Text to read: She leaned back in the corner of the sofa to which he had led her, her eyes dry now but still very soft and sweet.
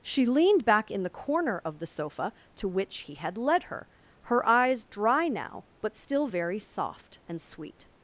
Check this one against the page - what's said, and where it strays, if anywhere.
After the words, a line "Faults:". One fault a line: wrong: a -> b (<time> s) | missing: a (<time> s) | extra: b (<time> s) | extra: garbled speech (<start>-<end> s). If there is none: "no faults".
She leaned back in the corner of the sofa to which he had led her, her eyes dry now but still very soft and sweet.
Faults:
no faults